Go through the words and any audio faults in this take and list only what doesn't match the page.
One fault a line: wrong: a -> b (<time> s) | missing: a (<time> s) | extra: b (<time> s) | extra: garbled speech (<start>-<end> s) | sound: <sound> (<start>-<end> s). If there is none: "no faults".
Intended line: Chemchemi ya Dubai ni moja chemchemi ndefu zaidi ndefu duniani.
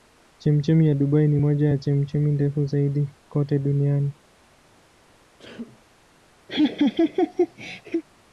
extra: ya (1.7 s)
wrong: ndefu -> kote (3.3 s)
sound: sneeze (5.4-5.9 s)
sound: laugh (6.5-8.0 s)